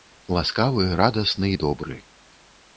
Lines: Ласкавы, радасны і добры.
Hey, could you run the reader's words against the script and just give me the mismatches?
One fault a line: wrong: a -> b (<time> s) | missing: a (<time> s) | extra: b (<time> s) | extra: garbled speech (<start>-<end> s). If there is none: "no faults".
no faults